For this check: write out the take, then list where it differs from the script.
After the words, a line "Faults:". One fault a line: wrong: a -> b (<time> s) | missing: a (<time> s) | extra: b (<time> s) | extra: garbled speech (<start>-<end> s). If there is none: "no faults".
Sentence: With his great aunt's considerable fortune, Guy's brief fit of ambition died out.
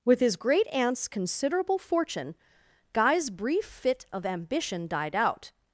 With his great aunt's considerable fortune, Guy's brief fit of ambition died out.
Faults:
no faults